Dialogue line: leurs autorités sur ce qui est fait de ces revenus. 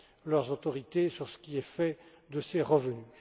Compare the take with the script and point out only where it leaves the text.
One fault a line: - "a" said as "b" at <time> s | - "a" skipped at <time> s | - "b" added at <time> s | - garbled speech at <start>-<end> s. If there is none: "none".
none